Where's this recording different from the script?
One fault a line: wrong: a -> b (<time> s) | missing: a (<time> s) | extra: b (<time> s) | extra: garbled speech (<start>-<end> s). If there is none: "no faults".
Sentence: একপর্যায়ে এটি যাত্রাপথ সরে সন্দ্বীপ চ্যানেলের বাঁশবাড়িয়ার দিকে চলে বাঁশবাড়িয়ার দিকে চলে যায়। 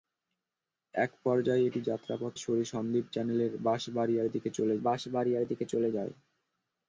no faults